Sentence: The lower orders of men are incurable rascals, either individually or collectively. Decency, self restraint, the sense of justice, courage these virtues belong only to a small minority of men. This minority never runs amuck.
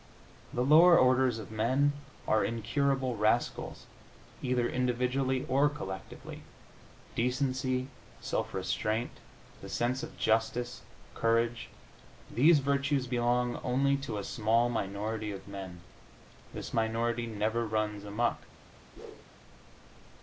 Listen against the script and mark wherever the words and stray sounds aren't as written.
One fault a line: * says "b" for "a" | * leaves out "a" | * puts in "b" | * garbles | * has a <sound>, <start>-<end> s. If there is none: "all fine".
* has a whoosh, 19.0-19.2 s